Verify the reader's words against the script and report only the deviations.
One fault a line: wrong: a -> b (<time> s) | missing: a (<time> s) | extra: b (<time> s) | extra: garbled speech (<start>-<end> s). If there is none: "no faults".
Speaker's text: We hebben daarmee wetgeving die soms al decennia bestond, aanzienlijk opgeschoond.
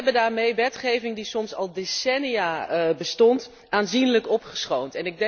no faults